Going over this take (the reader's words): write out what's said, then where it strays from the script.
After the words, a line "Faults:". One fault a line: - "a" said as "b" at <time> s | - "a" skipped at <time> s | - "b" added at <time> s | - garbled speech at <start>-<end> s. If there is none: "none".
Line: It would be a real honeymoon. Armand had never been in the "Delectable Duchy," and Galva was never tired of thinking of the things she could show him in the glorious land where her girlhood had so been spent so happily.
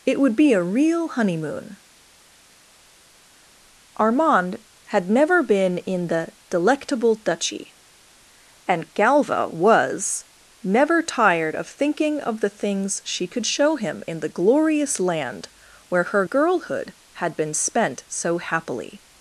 It would be a real honeymoon. Armand had never been in the "Delectable Duchy," and Galva was never tired of thinking of the things she could show him in the glorious land where her girlhood had been spent so happily.
Faults:
- "so" skipped at 17.3 s